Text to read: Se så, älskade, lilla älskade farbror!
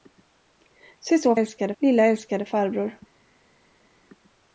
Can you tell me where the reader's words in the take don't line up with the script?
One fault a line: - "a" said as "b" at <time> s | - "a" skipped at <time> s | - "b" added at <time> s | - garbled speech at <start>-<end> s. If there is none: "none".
none